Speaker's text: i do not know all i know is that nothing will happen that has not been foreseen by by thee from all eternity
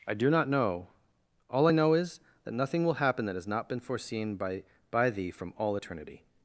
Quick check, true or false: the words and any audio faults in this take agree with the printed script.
true